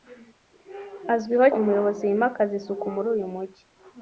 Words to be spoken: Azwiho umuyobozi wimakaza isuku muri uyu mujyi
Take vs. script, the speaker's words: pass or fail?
pass